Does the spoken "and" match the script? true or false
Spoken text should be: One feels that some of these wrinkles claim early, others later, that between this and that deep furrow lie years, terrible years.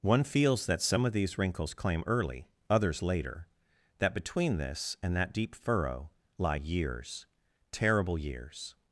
true